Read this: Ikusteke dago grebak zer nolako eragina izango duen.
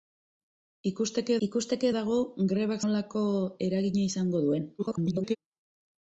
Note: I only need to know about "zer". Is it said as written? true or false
false